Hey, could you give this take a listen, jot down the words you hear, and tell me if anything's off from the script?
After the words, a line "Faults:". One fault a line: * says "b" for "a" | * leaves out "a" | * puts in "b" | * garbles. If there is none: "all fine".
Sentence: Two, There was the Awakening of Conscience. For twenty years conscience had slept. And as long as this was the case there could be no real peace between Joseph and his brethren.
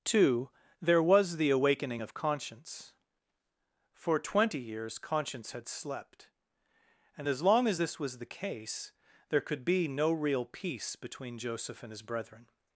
Two, There was the Awakening of Conscience. For twenty years conscience had slept. And as long as this was the case there could be no real peace between Joseph and his brethren.
Faults:
all fine